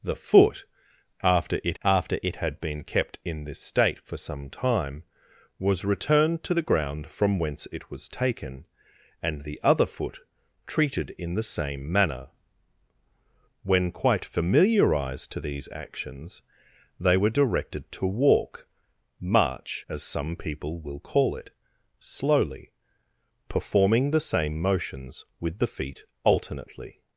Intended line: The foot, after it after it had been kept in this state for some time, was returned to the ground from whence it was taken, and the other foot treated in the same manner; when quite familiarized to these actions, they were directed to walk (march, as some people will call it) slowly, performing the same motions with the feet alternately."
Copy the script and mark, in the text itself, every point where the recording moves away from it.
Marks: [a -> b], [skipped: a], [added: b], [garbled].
The foot, after it after it had been kept in this state for some time, was returned to the ground from whence it was taken, and the other foot treated in the same manner; when quite familiarized to these actions, they were directed to walk (march, as some people will call it) slowly, performing the same motions with the feet alternately."